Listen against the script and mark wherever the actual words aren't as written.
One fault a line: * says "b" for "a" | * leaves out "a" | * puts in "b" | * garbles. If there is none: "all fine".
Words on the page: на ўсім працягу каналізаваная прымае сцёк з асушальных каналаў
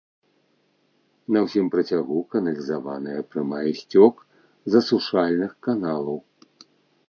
all fine